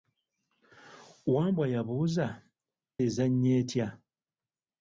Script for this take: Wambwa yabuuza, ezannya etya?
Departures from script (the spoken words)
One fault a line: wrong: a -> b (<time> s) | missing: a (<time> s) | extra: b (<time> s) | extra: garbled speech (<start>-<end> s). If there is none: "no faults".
no faults